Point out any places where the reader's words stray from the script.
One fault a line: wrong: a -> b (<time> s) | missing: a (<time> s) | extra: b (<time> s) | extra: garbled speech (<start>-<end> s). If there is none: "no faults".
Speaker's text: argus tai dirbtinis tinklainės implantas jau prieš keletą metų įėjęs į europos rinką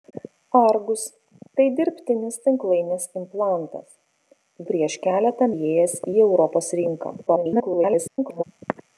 missing: jau (4.7 s)
missing: metų (5.5 s)
extra: garbled speech (7.3-8.4 s)